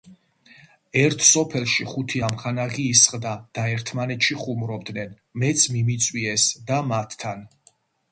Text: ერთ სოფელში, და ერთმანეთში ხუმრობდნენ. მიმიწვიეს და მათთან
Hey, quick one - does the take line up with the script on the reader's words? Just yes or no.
no